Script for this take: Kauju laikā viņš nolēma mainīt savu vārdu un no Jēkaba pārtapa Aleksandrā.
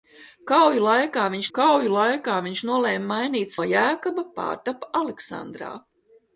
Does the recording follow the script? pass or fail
fail